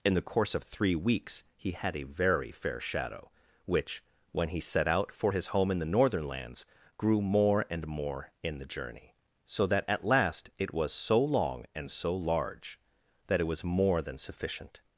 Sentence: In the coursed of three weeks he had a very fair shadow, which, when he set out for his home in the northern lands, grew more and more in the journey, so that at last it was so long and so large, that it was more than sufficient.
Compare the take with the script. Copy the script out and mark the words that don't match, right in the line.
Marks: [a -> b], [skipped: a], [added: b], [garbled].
In the [coursed -> course] of three weeks he had a very fair shadow, which, when he set out for his home in the northern lands, grew more and more in the journey, so that at last it was so long and so large, that it was more than sufficient.